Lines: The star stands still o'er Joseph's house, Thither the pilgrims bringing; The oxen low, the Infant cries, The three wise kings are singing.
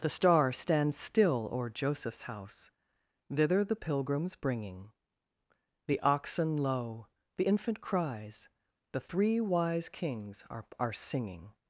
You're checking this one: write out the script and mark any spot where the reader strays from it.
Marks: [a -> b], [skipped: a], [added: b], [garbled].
The star stands still o'er Joseph's house, Thither the pilgrims bringing; The oxen low, the Infant cries, The three wise kings are [added: are] singing.